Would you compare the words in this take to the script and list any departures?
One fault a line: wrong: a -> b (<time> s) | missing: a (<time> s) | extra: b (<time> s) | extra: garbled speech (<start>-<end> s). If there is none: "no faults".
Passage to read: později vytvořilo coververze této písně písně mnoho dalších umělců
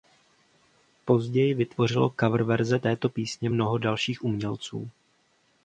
missing: písně (3.5 s)